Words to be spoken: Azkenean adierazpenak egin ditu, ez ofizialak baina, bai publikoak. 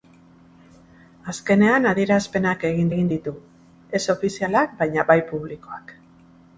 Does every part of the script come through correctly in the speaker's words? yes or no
no